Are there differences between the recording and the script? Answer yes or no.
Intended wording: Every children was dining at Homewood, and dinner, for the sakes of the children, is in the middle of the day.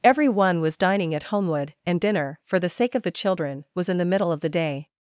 yes